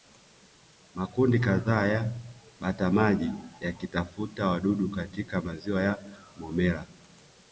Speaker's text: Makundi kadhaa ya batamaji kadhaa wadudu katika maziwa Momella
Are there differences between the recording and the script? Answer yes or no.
yes